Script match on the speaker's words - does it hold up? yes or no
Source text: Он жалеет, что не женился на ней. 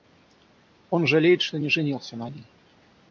yes